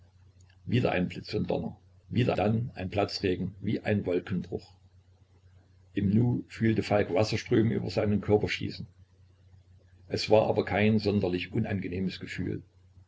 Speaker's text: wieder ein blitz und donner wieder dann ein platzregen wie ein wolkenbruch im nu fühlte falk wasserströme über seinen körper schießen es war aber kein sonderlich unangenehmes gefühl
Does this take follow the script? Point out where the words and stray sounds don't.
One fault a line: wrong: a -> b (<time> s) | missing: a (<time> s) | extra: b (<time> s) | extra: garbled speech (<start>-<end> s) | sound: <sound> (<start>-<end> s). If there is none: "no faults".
no faults